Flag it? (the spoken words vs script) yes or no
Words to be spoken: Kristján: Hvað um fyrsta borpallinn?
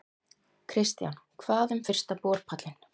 no